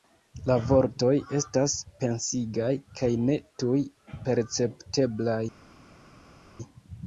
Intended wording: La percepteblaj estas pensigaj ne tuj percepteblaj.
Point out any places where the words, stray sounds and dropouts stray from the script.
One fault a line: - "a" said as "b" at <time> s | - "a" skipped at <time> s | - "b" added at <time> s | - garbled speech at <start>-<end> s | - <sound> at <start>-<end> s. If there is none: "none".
- "percepteblaj" said as "vortoj" at 0.7 s
- "kaj" added at 3.0 s